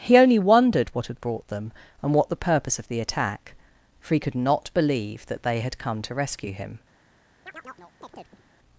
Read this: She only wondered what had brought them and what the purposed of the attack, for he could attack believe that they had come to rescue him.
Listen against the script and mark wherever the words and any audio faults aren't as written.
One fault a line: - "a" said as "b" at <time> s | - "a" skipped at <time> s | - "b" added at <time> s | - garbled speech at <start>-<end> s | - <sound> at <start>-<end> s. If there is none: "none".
- "She" said as "He" at 0.0 s
- "purposed" said as "purpose" at 2.5 s
- "attack" said as "not" at 4.3 s
- chirp at 7.5-8.4 s